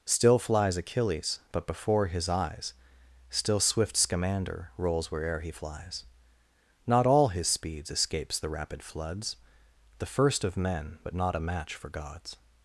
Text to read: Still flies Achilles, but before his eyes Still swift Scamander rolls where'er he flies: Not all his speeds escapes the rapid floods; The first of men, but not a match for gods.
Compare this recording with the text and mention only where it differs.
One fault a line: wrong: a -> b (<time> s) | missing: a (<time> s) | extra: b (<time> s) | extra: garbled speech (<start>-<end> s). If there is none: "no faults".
no faults